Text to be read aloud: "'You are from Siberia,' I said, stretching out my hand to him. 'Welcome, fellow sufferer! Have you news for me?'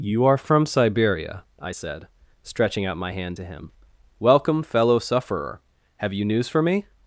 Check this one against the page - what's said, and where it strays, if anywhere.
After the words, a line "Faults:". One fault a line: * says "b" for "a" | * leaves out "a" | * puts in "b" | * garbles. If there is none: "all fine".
"'You are from Siberia,' I said, stretching out my hand to him. 'Welcome, fellow sufferer! Have you news for me?'
Faults:
all fine